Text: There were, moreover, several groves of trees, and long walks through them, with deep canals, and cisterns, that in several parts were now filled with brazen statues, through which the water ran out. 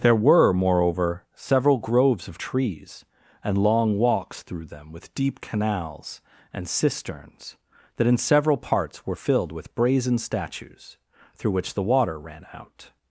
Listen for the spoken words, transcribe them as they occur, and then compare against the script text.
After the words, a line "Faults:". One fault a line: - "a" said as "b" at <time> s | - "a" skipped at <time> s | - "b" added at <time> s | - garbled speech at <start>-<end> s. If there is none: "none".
There were, moreover, several groves of trees, and long walks through them, with deep canals, and cisterns, that in several parts were filled with brazen statues, through which the water ran out.
Faults:
- "now" skipped at 9.2 s